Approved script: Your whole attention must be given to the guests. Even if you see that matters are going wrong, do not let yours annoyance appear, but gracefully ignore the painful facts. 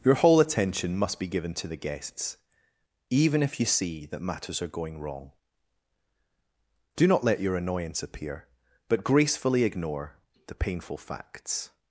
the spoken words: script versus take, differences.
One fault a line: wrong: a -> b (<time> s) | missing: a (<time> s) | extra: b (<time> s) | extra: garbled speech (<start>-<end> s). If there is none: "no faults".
wrong: yours -> your (7.4 s)